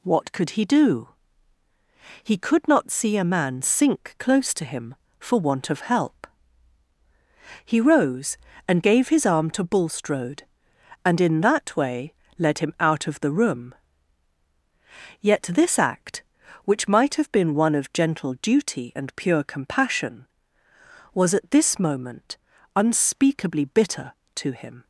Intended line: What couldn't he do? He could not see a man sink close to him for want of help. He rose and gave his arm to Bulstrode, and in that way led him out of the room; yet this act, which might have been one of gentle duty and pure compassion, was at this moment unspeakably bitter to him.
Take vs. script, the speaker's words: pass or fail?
fail